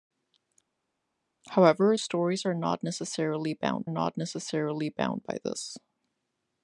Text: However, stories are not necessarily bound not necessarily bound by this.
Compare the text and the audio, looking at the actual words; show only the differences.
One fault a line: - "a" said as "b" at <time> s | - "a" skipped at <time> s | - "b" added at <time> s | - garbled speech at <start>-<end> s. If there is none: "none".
none